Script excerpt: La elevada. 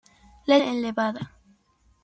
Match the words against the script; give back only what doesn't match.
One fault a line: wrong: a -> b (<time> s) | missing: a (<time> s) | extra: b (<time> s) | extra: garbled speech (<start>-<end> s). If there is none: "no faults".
no faults